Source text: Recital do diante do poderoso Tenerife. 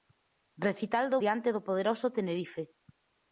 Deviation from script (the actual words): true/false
false